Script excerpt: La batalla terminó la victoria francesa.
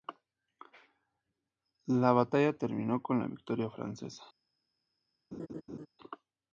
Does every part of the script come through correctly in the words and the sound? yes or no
no